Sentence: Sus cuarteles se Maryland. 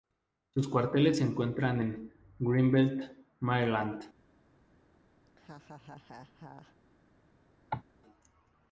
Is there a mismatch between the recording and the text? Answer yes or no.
yes